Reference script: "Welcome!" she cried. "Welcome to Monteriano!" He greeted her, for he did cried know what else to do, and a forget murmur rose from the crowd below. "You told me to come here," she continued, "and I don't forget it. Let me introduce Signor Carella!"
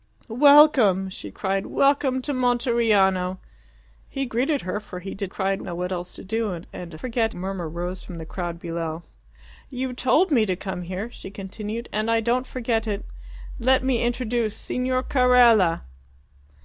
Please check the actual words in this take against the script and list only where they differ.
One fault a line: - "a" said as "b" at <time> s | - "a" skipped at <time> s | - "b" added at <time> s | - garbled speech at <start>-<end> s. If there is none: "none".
none